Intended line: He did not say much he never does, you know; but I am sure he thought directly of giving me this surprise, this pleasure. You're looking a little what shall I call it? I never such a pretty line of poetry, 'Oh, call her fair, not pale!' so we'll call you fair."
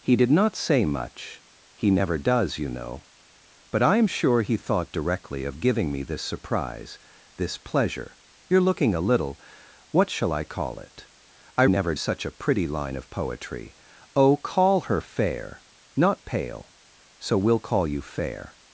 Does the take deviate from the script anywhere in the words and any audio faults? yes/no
no